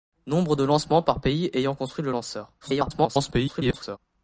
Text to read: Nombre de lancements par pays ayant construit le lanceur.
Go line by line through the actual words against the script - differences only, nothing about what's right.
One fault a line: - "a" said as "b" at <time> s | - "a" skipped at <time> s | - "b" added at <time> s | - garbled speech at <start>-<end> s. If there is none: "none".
- garbled speech at 2.6-4.0 s